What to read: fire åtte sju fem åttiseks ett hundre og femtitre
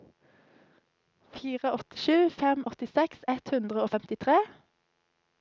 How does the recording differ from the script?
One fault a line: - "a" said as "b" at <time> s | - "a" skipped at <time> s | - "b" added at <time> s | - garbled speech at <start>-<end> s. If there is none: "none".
none